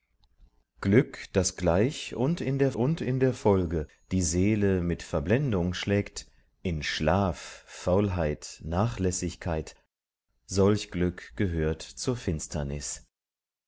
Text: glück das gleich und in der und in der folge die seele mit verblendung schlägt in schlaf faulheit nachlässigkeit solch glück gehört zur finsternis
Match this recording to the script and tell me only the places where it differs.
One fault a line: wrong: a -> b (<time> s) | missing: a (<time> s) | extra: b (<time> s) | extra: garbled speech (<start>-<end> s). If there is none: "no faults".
no faults